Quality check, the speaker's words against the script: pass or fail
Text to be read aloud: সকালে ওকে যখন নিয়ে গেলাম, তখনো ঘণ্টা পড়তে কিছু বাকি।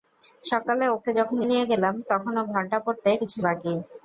pass